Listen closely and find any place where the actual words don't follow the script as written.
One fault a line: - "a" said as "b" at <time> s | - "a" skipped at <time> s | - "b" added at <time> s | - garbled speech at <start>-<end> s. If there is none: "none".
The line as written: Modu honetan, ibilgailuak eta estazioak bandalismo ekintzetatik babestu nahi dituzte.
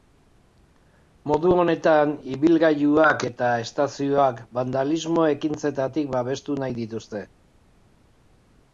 none